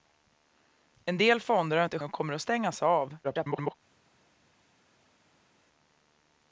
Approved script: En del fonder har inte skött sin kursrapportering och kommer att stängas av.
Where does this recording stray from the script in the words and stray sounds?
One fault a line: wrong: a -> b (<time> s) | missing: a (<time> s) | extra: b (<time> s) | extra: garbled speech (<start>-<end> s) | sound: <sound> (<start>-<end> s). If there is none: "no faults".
missing: skött sin kursrapportering (2.0 s)
extra: garbled speech (3.2-3.7 s)